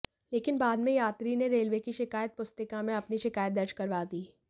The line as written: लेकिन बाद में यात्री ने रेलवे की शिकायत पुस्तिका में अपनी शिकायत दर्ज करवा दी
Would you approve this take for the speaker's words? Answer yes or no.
yes